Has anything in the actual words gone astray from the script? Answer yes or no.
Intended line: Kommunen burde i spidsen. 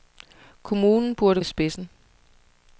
no